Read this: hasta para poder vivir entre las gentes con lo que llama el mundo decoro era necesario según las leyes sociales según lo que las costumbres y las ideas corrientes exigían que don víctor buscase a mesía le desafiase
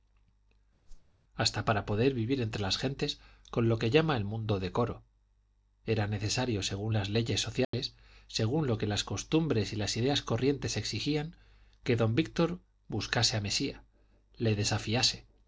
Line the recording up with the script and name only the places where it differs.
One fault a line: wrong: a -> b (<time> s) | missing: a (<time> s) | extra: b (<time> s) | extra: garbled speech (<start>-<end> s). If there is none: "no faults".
no faults